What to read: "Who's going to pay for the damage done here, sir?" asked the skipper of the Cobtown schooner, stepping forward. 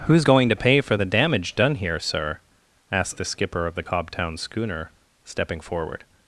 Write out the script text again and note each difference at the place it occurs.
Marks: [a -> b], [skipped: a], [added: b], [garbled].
"Who's going to pay for the damage done here, sir?" asked the skipper of the Cobtown schooner, stepping forward.